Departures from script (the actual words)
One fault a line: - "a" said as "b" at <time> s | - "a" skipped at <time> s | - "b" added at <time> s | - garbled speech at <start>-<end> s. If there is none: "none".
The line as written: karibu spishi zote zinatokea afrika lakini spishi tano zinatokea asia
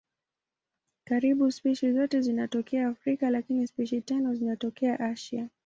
none